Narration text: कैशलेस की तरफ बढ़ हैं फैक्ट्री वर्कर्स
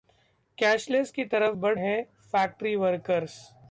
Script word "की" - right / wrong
right